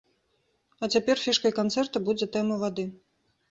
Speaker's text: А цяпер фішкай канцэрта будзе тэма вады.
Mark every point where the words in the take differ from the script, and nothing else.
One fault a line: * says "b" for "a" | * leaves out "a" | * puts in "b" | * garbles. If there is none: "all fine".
all fine